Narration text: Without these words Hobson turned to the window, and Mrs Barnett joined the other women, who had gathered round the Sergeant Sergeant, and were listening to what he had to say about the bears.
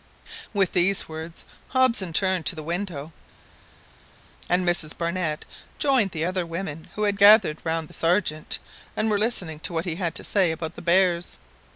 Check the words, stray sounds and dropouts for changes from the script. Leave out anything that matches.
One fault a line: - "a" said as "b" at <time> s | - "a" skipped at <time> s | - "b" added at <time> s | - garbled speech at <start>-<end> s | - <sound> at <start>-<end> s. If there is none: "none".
- "Without" said as "With" at 0.5 s
- "Sergeant" skipped at 8.6 s